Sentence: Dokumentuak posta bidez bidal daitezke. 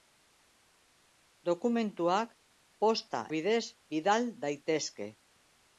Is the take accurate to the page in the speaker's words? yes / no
yes